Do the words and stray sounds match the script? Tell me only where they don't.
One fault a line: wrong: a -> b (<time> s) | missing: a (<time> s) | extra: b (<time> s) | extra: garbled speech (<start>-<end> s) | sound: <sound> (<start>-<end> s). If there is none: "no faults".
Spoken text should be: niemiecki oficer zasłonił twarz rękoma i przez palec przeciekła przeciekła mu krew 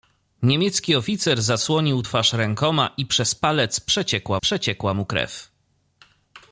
no faults